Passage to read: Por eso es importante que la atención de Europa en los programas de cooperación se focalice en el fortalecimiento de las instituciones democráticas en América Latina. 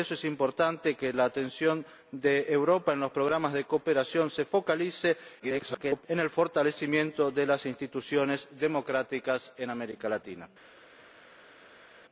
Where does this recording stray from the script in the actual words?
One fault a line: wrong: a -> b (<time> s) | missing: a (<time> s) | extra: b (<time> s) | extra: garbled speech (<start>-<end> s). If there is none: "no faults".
extra: garbled speech (5.4-6.1 s)